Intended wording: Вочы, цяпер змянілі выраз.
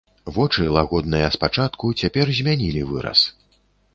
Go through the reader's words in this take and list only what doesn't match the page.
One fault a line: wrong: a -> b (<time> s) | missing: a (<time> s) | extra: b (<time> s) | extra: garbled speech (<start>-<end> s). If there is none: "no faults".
extra: лагодныя спачатку (0.8 s)